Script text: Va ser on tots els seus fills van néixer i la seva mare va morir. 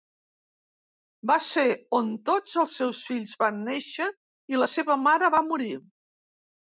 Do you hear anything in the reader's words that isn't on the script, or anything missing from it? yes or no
no